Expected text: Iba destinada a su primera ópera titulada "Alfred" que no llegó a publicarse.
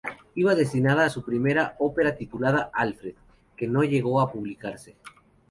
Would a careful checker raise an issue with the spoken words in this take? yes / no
no